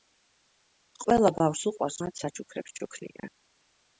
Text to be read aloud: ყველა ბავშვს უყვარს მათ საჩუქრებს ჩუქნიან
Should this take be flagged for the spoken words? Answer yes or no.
no